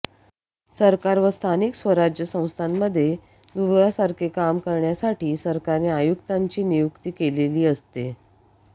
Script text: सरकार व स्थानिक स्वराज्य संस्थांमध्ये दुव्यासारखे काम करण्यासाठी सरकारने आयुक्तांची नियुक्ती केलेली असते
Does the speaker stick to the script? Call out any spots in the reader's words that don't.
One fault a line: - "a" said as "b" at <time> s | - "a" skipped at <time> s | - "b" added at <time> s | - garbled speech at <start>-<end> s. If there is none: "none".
none